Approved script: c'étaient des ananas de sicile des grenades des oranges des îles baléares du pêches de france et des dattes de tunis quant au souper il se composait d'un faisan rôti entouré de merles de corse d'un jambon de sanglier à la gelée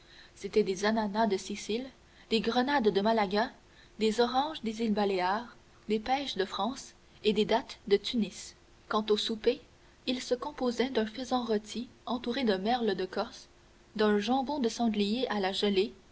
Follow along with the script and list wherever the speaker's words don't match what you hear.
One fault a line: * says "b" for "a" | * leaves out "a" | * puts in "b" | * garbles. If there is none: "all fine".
* puts in "de malaga"
* says "des" for "du"